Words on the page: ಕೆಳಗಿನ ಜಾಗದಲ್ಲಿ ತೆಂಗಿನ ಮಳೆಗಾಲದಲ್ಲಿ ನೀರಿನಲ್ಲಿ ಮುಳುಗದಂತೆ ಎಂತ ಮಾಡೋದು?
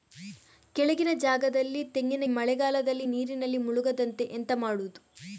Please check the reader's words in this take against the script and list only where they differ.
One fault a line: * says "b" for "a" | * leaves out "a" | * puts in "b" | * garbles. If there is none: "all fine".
all fine